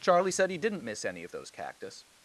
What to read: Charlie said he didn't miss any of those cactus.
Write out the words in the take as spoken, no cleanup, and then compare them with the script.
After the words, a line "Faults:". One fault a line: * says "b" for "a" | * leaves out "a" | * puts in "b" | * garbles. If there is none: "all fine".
Charlie said he didn't miss any of those cactus.
Faults:
all fine